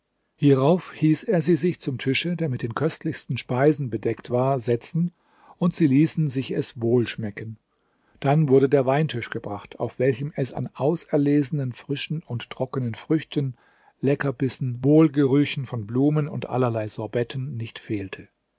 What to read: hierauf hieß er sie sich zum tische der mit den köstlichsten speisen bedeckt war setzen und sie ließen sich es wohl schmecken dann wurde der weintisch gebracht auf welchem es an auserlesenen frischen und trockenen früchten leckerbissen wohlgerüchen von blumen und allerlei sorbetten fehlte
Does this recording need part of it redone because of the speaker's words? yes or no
yes